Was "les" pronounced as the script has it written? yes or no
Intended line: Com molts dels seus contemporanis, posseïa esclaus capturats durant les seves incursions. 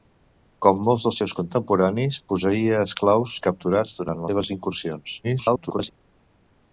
no